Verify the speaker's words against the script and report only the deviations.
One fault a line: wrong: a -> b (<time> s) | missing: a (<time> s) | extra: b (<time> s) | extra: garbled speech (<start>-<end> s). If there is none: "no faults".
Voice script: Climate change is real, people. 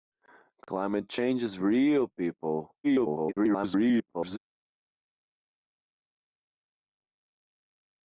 extra: garbled speech (2.8-4.4 s)